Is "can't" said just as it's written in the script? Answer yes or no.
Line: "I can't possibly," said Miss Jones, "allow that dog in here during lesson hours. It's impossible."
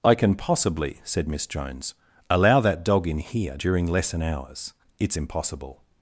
no